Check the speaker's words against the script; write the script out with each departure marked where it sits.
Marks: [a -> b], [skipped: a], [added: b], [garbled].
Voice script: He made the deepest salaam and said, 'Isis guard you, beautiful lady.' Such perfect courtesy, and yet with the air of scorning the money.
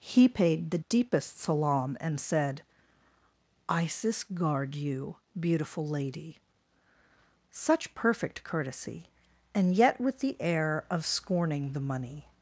He [made -> paid] the deepest salaam and said, 'Isis guard you, beautiful lady.' Such perfect courtesy, and yet with the air of scorning the money.